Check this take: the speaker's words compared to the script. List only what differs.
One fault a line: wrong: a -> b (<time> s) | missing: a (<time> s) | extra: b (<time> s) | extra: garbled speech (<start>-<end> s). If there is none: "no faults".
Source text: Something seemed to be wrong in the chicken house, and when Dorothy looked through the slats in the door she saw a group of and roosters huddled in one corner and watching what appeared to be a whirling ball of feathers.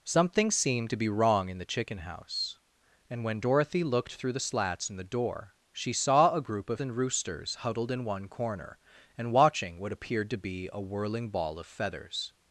no faults